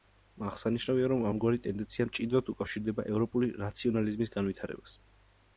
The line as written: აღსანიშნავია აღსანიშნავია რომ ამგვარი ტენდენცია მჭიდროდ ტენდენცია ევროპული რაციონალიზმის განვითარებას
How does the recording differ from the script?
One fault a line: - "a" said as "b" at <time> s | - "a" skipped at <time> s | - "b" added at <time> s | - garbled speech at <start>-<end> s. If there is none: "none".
- "აღსანიშნავია" skipped at 1.1 s
- "ტენდენცია" said as "უკავშირდება" at 2.5 s